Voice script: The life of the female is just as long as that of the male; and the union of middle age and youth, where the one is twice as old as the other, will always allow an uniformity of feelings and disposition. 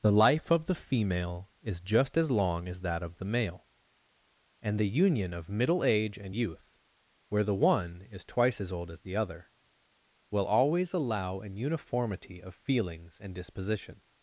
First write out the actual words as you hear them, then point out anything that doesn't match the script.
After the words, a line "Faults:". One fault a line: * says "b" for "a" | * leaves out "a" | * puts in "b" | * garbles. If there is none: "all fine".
The life of the female is just as long as that of the male; and the union of middle age and youth, where the one is twice as old as the other, will always allow an uniformity of feelings and disposition.
Faults:
all fine